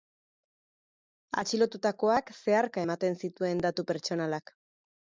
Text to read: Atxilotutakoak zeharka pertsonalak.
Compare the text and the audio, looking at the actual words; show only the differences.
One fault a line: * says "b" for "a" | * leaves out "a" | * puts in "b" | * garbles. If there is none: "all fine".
* puts in "ematen zituen datu"